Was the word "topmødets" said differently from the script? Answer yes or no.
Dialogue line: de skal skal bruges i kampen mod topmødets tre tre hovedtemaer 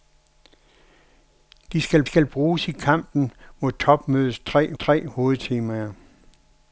no